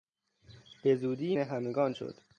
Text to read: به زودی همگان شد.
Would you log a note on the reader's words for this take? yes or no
no